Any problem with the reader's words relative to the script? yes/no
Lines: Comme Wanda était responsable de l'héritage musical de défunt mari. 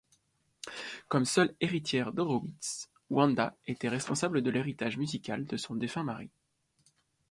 yes